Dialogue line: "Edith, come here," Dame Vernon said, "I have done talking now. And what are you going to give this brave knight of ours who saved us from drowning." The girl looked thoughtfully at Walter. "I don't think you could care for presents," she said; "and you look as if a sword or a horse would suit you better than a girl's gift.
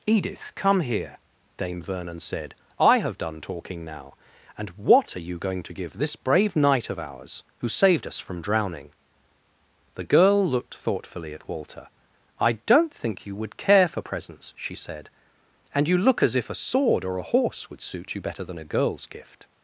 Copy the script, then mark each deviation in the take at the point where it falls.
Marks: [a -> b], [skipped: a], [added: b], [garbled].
"Edith, come here," Dame Vernon said, "I have done talking now. And what are you going to give this brave knight of ours who saved us from drowning." The girl looked thoughtfully at Walter. "I don't think you [could -> would] care for presents," she said; "and you look as if a sword or a horse would suit you better than a girl's gift.